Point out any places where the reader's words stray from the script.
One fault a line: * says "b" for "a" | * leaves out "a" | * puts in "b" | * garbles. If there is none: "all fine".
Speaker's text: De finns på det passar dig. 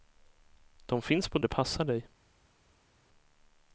all fine